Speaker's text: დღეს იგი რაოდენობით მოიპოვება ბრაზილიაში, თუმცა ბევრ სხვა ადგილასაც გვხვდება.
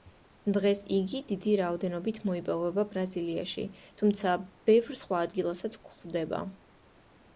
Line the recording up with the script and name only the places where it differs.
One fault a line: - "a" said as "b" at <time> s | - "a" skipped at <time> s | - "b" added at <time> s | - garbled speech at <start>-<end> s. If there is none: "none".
- "დიდი" added at 1.3 s